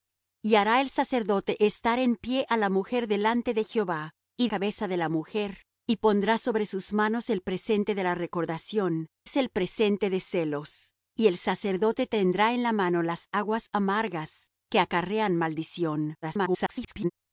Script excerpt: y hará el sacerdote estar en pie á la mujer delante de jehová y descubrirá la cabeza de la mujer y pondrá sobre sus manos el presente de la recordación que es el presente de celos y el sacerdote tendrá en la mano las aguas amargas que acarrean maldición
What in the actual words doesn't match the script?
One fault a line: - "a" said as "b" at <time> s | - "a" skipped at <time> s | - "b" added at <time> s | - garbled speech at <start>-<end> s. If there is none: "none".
- "descubrirá la" skipped at 4.5 s
- "que" skipped at 9.1 s
- garbled speech at 16.2-17.1 s